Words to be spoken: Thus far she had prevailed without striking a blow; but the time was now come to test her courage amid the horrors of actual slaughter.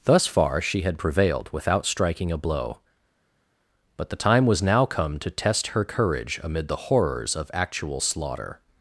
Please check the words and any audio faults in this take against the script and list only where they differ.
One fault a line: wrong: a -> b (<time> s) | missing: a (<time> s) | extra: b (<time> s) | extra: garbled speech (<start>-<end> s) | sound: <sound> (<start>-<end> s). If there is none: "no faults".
no faults